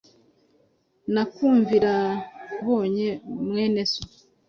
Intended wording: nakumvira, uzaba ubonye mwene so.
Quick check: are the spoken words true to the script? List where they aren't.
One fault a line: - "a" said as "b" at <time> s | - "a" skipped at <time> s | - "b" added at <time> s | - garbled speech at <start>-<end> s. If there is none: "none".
- "uzaba" skipped at 1.9 s